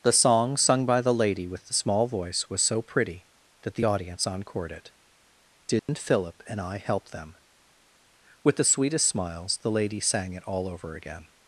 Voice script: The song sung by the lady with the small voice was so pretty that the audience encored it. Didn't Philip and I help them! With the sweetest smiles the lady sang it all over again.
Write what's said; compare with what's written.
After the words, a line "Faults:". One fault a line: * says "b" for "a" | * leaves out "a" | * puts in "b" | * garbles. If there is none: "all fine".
The song sung by the lady with the small voice was so pretty that the audience encored it. Didn't Philip and I help them! With the sweetest smiles the lady sang it all over again.
Faults:
all fine